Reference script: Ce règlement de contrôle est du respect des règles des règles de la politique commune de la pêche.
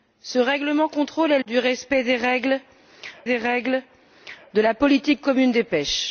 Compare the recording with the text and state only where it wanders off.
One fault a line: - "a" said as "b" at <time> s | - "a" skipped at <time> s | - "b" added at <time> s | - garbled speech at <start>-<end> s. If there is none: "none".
none